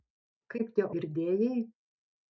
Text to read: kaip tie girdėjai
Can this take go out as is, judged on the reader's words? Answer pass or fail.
pass